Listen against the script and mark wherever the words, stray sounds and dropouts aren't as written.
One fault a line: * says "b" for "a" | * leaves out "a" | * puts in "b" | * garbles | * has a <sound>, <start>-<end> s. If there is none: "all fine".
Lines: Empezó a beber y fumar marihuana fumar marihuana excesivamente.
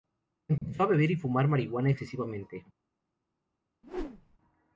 * has a dropout, 0.6-0.6 s
* leaves out "fumar marihuana"
* has a whoosh, 3.8-4.4 s